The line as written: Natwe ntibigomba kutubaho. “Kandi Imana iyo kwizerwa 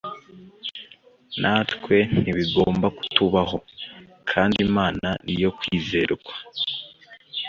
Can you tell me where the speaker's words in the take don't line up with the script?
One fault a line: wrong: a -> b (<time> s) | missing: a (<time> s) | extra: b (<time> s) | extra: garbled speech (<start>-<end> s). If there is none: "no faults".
no faults